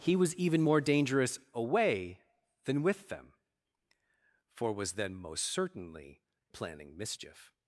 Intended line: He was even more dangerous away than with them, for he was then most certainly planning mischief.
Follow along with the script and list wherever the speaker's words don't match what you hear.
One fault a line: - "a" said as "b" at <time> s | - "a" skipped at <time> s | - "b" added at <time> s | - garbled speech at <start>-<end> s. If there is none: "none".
- "he" skipped at 4.7 s